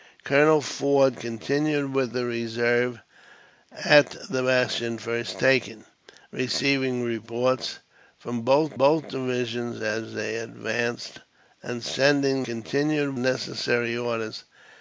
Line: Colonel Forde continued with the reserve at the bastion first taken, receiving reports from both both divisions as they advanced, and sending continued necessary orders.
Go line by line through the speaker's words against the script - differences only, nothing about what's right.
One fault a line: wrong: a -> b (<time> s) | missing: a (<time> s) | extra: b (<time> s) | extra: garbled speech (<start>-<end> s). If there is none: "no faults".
no faults